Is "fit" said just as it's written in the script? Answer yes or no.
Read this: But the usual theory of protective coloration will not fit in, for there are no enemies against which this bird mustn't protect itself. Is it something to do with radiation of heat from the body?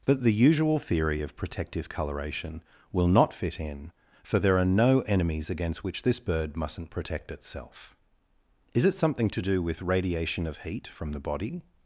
yes